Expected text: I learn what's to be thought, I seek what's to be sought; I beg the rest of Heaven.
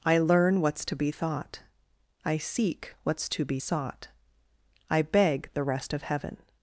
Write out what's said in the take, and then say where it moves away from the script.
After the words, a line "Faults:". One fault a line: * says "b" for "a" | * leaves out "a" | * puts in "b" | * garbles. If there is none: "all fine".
I learn what's to be thought, I seek what's to be sought; I beg the rest of Heaven.
Faults:
all fine